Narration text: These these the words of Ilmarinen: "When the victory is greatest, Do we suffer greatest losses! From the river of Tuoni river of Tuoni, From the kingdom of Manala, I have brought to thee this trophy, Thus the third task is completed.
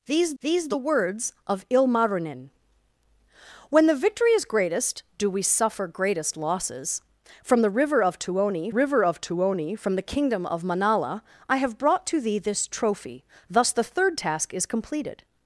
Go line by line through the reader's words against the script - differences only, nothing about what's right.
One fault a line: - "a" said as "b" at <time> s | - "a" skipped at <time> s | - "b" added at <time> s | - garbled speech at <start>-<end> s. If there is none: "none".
none